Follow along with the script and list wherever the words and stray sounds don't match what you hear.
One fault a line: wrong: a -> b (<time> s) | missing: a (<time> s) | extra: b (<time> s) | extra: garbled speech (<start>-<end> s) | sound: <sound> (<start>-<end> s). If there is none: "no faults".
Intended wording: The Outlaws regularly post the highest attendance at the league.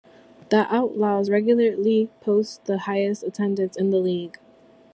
wrong: at -> in (3.7 s)